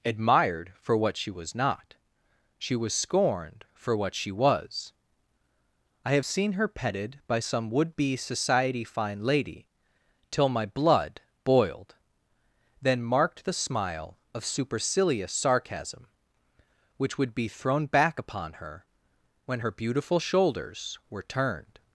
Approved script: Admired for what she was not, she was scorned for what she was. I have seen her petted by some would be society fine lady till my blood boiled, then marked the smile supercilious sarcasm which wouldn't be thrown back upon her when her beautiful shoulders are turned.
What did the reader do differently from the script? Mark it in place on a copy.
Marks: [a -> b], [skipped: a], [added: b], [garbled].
Admired for what she was not, she was scorned for what she was. I have seen her petted by some would be society fine lady till my blood boiled, then marked the smile [added: of] supercilious sarcasm which [wouldn't -> would] be thrown back upon her when her beautiful shoulders [are -> were] turned.